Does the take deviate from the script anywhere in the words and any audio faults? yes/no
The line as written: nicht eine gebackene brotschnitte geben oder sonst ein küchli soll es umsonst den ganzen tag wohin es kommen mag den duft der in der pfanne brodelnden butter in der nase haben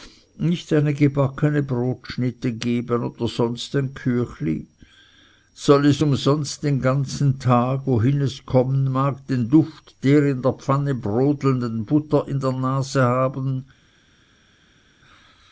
no